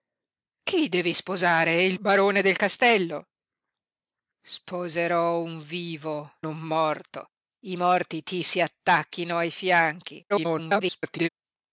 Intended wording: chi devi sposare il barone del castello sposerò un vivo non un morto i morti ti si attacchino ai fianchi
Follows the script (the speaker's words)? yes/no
no